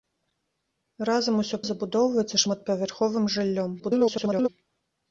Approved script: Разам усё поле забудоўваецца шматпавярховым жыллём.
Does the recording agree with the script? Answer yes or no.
no